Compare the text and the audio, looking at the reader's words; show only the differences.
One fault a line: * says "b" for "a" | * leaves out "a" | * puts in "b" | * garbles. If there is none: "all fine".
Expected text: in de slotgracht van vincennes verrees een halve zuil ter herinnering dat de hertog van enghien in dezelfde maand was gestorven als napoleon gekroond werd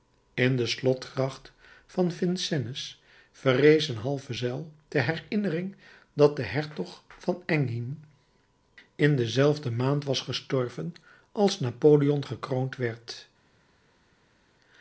all fine